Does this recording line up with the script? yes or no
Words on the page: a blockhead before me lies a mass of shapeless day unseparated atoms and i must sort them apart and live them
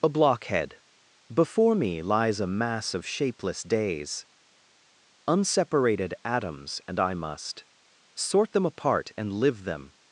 no